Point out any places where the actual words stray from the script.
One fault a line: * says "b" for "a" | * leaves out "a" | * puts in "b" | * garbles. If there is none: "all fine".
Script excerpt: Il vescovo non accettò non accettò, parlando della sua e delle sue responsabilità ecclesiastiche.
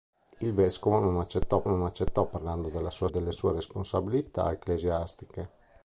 all fine